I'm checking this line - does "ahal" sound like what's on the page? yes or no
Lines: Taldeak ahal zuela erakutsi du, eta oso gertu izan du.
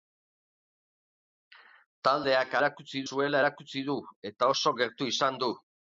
no